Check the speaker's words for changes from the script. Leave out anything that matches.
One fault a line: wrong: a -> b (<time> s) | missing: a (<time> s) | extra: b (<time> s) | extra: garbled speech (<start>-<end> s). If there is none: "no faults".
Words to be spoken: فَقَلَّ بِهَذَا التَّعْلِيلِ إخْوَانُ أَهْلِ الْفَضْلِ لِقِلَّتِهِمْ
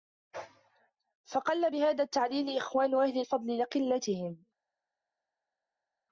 no faults